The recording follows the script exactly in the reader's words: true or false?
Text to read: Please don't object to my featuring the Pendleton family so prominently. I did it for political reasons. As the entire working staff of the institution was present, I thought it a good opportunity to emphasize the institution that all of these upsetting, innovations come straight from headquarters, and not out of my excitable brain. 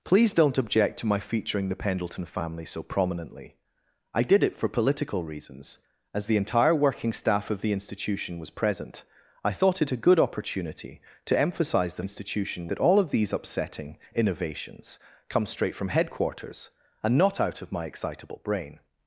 true